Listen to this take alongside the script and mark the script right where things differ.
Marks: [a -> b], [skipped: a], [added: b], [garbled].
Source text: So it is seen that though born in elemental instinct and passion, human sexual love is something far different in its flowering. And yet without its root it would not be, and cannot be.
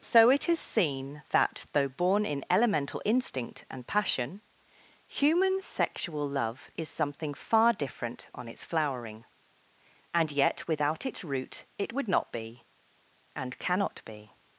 So it is seen that though born in elemental instinct and passion, human sexual love is something far different [in -> on] its flowering. And yet without its root it would not be, and cannot be.